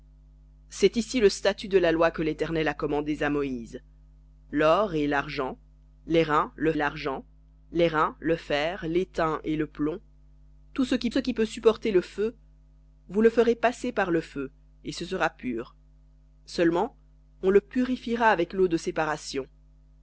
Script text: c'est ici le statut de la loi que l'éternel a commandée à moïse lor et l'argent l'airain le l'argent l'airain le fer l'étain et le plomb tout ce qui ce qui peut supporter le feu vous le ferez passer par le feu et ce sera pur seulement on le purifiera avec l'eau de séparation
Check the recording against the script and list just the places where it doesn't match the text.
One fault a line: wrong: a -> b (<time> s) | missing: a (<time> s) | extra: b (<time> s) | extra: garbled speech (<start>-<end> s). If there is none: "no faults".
no faults